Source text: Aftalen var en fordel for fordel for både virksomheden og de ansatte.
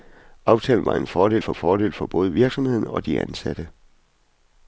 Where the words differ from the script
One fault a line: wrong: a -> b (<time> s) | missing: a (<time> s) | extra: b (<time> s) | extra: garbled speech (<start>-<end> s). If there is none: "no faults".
no faults